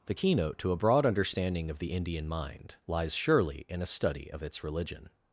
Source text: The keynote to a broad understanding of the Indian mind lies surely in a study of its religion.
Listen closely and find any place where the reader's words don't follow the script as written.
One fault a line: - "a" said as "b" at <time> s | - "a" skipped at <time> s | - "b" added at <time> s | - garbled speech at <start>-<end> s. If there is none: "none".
none